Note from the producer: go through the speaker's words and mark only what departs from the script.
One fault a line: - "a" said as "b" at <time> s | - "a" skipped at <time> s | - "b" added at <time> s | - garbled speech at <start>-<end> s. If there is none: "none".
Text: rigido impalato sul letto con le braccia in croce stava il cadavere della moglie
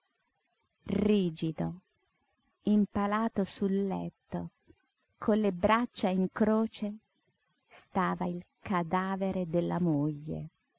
none